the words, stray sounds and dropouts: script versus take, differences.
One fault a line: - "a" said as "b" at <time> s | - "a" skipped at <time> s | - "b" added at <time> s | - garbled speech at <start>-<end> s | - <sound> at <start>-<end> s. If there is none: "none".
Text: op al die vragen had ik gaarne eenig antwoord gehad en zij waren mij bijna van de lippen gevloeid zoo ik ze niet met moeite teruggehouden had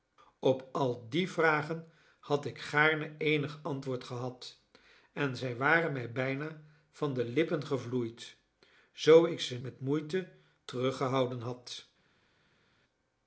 - "niet" skipped at 9.6 s